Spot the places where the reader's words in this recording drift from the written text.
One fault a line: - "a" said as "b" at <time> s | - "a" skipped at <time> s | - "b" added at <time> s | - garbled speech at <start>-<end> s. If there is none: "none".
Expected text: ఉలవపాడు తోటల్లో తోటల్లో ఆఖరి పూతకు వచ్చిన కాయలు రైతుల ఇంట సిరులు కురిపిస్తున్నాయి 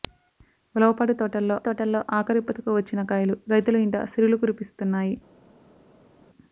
none